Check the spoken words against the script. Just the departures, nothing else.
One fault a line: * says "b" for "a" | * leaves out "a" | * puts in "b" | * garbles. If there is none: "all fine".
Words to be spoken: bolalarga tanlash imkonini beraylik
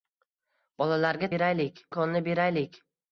* says "beraylik" for "tanlash"